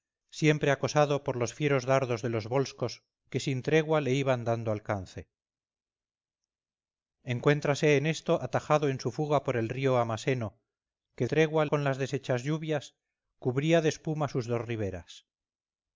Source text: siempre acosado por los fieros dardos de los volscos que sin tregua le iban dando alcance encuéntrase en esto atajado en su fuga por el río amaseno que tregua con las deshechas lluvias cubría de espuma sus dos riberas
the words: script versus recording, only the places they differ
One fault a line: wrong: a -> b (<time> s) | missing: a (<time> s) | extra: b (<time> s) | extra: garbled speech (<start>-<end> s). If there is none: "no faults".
no faults